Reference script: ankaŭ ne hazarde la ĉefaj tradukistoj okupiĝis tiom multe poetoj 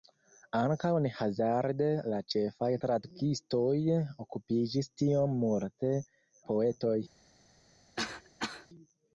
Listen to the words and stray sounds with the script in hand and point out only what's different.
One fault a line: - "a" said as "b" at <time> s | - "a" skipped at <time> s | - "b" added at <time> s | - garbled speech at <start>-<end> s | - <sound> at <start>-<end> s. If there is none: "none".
- cough at 8.0-8.7 s